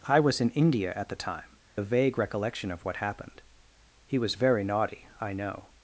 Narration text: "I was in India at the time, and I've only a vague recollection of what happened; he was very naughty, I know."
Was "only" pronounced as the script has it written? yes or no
no